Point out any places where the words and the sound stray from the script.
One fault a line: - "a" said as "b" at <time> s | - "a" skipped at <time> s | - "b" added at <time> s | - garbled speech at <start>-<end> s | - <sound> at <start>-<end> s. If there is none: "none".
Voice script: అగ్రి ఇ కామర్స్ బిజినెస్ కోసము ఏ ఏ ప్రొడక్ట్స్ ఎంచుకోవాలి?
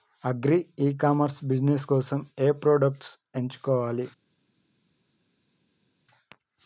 - "ఏ" skipped at 2.5 s